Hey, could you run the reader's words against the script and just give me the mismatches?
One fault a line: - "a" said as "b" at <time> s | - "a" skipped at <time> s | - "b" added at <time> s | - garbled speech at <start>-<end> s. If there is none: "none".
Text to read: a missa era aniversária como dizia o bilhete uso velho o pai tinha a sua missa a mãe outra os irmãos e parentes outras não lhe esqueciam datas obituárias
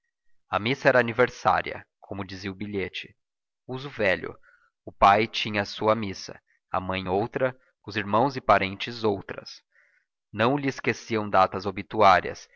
none